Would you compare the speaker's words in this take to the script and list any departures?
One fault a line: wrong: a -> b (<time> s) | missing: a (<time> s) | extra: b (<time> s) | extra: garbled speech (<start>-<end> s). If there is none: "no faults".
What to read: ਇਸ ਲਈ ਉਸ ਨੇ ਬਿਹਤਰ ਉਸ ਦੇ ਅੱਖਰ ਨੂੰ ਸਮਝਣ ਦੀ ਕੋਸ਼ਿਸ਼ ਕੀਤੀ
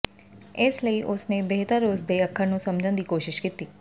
no faults